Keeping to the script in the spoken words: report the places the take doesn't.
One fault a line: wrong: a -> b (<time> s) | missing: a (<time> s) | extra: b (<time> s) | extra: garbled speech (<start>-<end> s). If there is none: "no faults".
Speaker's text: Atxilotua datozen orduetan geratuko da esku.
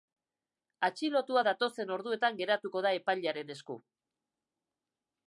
extra: epailearen (3.0 s)